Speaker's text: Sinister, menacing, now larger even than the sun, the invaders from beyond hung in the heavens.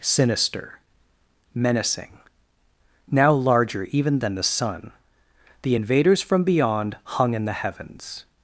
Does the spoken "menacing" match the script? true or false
true